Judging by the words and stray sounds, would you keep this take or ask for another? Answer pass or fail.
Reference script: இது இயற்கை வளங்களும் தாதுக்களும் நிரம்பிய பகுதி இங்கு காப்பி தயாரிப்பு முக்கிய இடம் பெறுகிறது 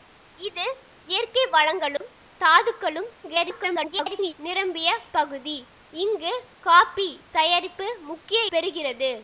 fail